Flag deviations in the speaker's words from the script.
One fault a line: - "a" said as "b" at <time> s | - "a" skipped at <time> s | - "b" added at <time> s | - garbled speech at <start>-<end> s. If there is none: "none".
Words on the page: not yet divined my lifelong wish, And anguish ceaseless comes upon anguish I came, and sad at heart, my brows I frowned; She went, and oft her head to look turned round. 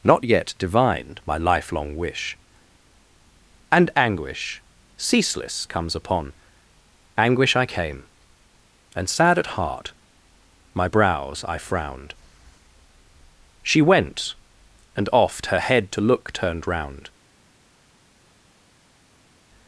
none